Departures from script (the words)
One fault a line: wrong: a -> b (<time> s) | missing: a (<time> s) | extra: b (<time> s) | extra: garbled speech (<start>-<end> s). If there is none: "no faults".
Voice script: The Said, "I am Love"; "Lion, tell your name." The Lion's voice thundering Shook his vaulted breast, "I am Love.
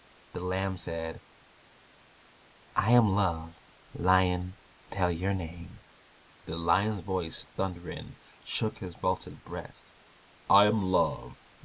extra: Lamb (0.4 s)